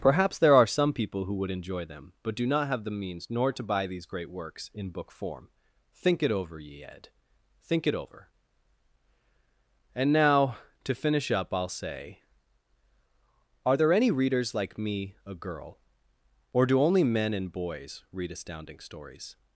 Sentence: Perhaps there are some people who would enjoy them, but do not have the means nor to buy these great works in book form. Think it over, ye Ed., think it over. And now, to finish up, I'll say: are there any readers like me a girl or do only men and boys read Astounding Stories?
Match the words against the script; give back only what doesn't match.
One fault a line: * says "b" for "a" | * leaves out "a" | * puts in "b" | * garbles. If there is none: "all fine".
all fine